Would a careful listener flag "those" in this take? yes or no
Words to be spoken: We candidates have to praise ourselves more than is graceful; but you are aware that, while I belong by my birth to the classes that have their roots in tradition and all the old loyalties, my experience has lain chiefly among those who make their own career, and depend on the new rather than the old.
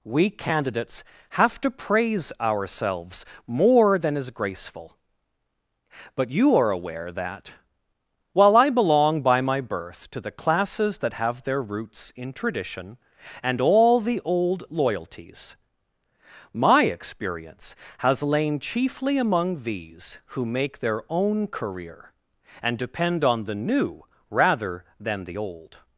yes